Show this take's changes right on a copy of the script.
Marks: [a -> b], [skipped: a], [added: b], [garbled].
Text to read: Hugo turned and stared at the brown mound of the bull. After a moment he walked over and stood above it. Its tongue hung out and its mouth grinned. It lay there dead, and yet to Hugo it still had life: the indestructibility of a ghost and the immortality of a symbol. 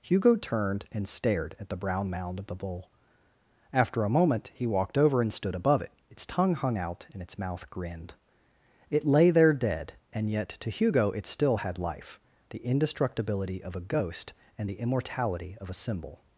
Hugo turned and stared at the brown mound of the bull. After a moment he walked over and stood above it. Its tongue hung out and its mouth grinned. It lay there dead, and yet to Hugo it still had life: the indestructibility of a ghost and the immortality of a symbol.